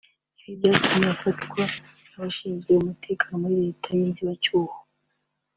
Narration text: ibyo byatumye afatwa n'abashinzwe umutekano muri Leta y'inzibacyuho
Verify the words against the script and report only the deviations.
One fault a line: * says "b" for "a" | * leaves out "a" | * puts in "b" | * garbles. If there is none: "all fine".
* says "ibi" for "ibyo"